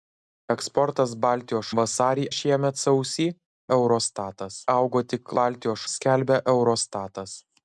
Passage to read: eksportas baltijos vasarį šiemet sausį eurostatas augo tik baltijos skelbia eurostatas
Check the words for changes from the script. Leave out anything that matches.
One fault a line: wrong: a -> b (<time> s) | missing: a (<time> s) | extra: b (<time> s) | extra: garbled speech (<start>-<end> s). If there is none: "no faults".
no faults